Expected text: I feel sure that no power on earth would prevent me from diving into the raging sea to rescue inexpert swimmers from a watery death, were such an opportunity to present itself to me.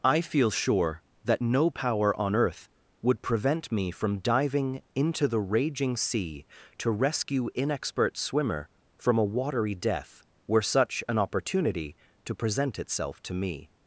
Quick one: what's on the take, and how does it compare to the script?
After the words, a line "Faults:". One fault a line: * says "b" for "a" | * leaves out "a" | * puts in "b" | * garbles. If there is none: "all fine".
I feel sure that no power on earth would prevent me from diving into the raging sea to rescue inexpert swimmer from a watery death, were such an opportunity to present itself to me.
Faults:
* says "swimmer" for "swimmers"